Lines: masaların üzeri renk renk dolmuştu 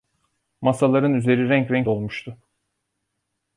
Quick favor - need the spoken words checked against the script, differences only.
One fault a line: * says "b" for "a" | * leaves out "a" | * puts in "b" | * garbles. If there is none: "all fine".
all fine